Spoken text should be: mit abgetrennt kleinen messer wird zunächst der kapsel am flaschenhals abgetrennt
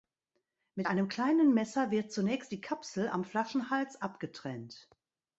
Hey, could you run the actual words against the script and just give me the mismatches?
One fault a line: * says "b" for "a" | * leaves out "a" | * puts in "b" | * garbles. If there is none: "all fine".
* says "einem" for "abgetrennt"
* says "die" for "der"